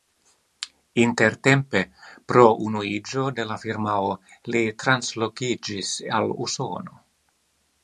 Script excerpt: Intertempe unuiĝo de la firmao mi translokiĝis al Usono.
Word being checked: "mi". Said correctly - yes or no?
no